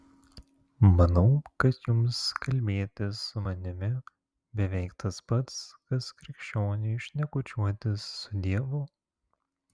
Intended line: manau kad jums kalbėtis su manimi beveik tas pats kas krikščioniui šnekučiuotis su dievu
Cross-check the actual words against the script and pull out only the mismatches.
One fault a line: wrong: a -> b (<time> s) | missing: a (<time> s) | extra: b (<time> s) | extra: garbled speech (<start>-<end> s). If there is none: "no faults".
no faults